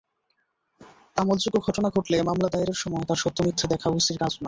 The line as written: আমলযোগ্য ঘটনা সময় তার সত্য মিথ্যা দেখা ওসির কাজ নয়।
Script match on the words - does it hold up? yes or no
no